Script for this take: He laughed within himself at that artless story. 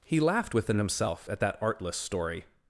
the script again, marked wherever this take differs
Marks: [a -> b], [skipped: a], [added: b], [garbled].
He laughed within himself at that artless story.